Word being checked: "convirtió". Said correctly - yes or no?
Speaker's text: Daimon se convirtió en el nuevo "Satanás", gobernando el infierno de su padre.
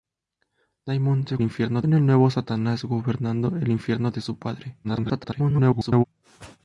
no